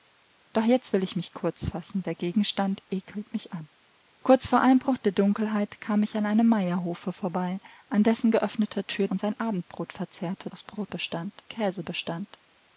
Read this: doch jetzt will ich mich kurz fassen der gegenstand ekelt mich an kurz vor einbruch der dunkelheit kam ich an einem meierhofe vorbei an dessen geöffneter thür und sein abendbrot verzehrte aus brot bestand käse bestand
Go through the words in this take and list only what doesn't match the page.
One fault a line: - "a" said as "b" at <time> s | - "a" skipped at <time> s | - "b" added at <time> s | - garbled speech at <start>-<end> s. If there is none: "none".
none